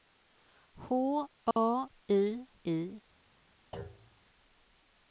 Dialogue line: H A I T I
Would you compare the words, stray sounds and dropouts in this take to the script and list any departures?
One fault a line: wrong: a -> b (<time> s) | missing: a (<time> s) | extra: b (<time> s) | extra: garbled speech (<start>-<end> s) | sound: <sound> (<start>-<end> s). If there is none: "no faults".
sound: dropout (1.5-1.6 s)
missing: T (2.5 s)
sound: thud (3.7-4.2 s)